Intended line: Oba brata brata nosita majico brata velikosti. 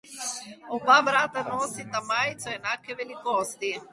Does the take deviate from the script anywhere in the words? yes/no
yes